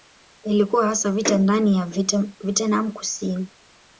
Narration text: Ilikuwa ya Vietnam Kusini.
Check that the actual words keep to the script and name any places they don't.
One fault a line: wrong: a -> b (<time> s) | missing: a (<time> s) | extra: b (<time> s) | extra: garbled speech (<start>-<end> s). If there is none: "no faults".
extra: hasa vita ndani (0.9 s)